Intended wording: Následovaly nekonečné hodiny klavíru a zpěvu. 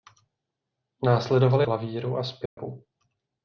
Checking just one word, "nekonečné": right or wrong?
wrong